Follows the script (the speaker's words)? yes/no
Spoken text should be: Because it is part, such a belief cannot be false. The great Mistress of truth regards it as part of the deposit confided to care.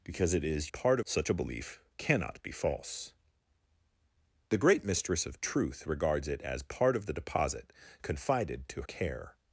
yes